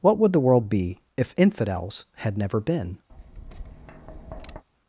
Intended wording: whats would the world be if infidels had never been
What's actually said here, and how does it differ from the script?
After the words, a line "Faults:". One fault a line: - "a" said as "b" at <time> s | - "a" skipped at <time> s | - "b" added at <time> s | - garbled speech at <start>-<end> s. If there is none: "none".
what would the world be if infidels had never been
Faults:
- "whats" said as "what" at 0.0 s